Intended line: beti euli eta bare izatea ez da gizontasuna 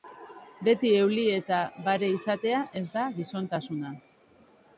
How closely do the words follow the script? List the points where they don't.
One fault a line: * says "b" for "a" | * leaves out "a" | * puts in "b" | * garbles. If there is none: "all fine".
all fine